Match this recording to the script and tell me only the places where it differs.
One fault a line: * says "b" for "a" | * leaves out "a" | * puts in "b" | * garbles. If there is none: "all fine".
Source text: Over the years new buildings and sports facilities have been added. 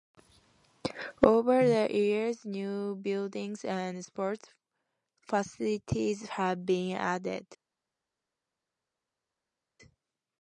all fine